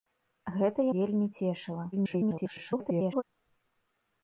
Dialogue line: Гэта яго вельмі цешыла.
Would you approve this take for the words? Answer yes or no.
no